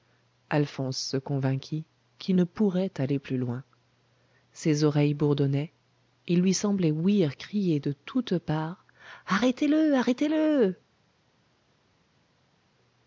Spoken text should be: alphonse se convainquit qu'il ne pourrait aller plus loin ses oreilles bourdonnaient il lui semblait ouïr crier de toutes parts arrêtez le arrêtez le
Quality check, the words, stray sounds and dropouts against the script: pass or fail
pass